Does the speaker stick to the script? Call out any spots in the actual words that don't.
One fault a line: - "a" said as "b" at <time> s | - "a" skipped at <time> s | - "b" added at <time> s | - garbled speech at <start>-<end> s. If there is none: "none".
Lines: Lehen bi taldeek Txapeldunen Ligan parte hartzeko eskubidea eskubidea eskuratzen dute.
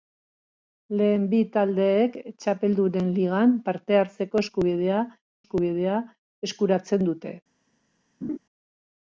none